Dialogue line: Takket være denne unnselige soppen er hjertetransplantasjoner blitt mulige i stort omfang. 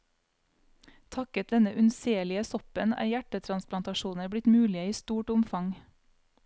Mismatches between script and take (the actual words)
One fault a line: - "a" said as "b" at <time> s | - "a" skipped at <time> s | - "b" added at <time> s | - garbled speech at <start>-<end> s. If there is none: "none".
- "være" skipped at 1.5 s